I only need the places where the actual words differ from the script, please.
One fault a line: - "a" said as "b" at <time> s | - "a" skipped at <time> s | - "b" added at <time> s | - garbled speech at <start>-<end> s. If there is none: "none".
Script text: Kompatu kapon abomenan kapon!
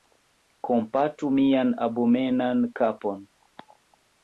- "kapon" said as "mian" at 1.4 s